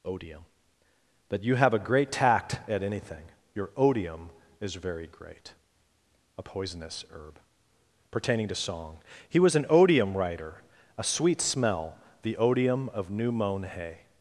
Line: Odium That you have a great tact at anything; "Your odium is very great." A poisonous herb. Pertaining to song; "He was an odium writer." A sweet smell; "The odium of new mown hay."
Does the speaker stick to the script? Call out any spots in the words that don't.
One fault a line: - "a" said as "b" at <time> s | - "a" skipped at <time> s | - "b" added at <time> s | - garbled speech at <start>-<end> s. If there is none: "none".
none